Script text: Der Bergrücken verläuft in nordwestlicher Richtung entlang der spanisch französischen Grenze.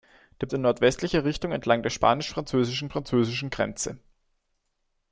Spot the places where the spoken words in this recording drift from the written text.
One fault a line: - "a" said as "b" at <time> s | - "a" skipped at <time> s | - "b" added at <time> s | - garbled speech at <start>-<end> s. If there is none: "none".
- "Bergrücken verläuft" skipped at 0.5 s
- "französischen" added at 2.9 s